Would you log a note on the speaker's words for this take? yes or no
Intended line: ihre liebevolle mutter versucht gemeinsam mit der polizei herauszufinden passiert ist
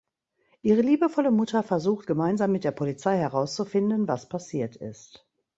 yes